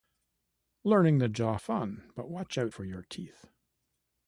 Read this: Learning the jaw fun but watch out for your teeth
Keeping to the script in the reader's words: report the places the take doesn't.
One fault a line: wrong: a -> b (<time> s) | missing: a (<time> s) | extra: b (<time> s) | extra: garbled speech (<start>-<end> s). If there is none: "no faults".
no faults